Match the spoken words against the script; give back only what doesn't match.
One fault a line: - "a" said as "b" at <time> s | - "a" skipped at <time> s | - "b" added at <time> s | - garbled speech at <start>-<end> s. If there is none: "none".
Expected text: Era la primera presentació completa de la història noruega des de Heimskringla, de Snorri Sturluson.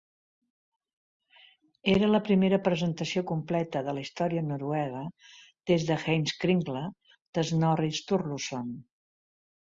none